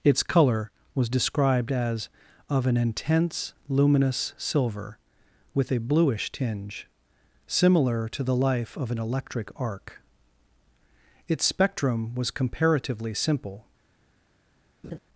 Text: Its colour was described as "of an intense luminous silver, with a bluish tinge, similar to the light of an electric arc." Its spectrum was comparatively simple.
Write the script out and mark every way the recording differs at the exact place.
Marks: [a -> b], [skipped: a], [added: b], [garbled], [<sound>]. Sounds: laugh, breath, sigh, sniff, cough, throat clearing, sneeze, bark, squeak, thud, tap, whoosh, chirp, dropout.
Its colour was described as "of an intense luminous silver, with a bluish tinge, similar to the [light -> life] of an electric arc." Its spectrum was comparatively simple. [laugh]